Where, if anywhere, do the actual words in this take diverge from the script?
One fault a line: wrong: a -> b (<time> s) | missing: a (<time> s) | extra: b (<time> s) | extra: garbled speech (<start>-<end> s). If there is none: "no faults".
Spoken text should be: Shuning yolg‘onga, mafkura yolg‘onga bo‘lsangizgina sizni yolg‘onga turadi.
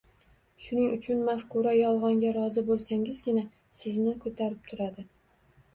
wrong: yolg‘onga -> uchun (0.9 s)
extra: rozi (2.4 s)
wrong: yolg‘onga -> ko‘tarib (4.3 s)